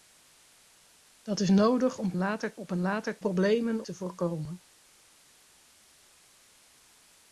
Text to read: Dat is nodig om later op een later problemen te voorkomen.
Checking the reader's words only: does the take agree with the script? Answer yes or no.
yes